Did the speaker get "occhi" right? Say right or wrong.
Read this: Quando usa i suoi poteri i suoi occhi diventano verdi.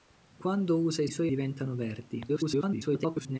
wrong